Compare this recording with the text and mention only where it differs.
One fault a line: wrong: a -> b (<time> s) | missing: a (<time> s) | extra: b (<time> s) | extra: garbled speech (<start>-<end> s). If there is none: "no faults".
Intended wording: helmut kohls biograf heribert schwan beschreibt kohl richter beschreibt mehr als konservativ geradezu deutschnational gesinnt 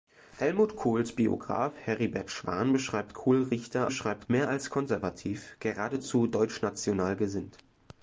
no faults